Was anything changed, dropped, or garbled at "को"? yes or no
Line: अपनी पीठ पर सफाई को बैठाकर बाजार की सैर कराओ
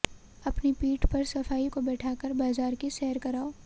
no